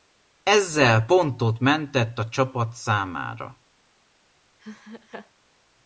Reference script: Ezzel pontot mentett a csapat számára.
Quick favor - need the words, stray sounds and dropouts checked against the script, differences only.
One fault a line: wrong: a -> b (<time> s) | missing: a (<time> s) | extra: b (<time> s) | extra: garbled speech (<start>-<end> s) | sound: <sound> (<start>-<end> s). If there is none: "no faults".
sound: laugh (4.6-5.3 s)